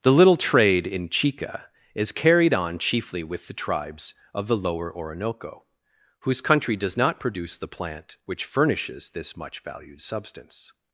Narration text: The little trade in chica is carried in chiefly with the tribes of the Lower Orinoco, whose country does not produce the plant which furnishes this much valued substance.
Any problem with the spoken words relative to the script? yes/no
yes